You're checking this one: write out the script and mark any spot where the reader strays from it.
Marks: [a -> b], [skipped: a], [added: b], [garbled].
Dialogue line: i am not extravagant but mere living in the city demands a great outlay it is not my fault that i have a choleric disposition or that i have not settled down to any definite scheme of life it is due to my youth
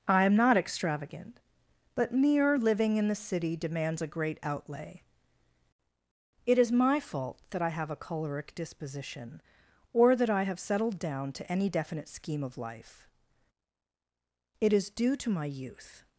i am not extravagant but mere living in the city demands a great outlay it is [skipped: not] my fault that i have a choleric disposition or that i have [skipped: not] settled down to any definite scheme of life it is due to my youth